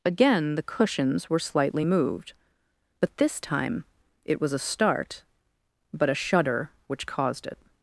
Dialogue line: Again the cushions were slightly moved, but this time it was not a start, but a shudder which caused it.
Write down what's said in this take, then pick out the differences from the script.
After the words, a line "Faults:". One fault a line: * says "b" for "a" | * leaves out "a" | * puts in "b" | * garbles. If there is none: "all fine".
Again the cushions were slightly moved, but this time it was a start, but a shudder which caused it.
Faults:
* leaves out "not"